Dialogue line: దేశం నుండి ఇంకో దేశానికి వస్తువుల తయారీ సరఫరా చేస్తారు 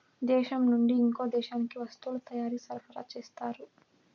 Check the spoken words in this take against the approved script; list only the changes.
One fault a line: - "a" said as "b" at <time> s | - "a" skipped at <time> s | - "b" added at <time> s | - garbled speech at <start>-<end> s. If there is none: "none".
none